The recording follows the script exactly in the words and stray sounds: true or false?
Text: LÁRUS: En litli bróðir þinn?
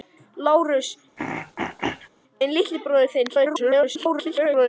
false